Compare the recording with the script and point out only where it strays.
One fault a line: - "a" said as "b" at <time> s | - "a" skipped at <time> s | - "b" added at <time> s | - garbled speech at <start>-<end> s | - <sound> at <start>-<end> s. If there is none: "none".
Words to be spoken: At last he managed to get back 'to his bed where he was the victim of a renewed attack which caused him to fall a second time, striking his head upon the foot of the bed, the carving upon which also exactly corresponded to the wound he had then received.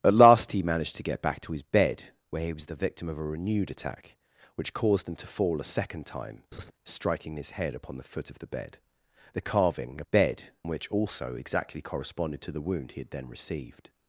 - laugh at 6.5-6.7 s
- "upon" said as "bed" at 10.0 s